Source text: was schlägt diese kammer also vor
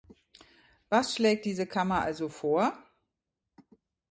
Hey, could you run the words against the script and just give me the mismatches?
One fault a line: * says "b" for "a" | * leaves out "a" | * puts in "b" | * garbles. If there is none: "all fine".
all fine